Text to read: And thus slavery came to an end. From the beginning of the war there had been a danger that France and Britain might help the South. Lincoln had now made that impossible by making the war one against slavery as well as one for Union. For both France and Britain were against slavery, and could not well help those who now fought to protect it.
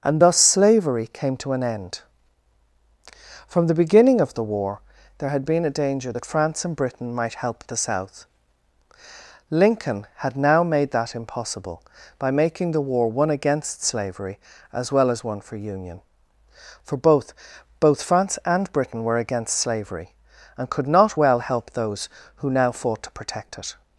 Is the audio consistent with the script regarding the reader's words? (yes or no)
no